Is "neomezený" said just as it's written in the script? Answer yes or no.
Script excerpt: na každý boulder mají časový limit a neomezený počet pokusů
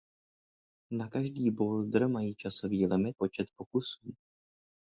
no